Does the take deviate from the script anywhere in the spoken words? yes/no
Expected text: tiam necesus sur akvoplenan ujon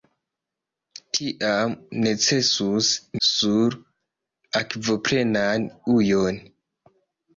no